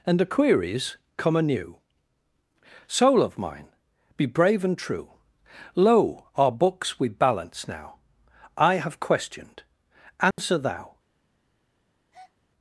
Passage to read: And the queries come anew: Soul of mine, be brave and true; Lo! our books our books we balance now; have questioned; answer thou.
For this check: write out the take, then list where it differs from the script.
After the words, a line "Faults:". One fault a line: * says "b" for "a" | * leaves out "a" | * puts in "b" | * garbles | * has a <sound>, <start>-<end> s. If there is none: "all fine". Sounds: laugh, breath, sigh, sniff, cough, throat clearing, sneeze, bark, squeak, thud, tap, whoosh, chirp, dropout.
And the queries come anew: Soul of mine, be brave and true; Lo! our books we balance now; I have questioned; answer thou.
Faults:
* leaves out "our books"
* puts in "I"
* has a dropout, 10.3-10.4 s
* has a breath, 12.1-12.3 s